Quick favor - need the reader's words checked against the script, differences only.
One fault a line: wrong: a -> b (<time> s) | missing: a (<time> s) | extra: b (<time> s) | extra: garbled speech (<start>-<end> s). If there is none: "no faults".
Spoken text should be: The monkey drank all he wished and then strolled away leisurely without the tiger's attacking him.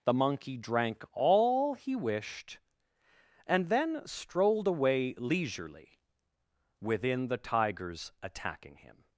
wrong: without -> within (6.8 s)